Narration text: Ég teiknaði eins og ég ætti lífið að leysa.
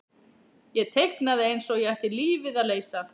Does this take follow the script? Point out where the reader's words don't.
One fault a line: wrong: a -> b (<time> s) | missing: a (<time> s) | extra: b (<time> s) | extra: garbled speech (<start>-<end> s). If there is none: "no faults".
no faults